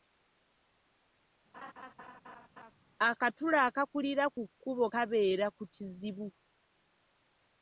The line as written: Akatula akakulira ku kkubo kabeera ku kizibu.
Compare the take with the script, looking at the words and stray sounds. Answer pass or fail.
fail